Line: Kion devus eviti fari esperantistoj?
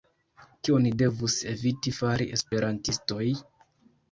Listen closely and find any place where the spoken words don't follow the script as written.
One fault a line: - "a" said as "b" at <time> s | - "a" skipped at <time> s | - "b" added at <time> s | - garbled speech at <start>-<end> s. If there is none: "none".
none